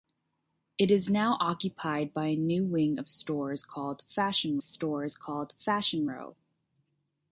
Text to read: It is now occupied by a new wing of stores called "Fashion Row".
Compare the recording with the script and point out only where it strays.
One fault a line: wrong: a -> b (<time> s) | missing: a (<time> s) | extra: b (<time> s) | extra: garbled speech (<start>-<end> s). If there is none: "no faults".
extra: stores called Fashion (4.6 s)